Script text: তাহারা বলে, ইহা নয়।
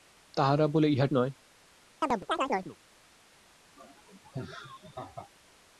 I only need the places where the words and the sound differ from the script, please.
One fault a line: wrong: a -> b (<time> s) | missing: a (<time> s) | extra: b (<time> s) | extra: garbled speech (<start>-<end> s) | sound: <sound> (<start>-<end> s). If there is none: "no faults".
sound: chirp (2.0-2.8 s)
sound: laugh (3.8-5.3 s)